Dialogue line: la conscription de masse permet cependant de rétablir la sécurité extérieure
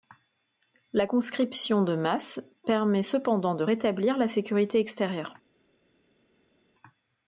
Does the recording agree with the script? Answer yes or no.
yes